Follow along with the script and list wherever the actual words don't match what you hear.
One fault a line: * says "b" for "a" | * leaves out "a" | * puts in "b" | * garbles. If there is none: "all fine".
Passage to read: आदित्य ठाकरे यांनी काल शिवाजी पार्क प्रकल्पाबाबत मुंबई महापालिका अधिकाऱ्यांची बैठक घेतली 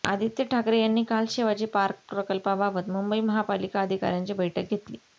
all fine